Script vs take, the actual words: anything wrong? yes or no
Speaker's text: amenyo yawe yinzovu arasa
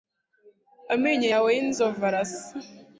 no